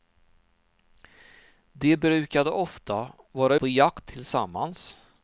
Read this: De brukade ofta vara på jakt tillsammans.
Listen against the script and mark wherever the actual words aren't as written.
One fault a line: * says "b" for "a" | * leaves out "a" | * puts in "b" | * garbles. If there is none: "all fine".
all fine